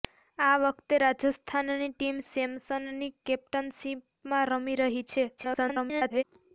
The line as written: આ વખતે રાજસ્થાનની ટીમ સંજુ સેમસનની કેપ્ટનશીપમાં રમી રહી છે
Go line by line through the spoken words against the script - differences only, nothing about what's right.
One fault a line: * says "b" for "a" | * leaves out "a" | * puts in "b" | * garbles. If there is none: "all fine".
* leaves out "સંજુ"
* garbles